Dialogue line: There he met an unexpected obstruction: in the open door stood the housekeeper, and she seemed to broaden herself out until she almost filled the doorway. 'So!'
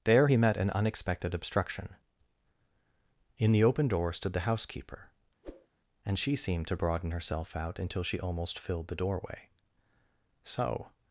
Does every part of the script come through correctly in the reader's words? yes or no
yes